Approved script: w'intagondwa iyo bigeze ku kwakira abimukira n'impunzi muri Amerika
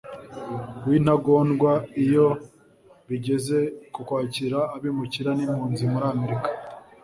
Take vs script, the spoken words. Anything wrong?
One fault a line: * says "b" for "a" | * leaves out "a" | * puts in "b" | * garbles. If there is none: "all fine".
all fine